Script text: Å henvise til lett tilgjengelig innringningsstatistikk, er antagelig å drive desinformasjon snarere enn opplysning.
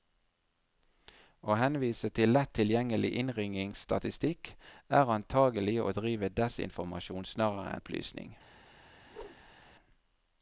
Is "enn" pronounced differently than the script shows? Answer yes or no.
yes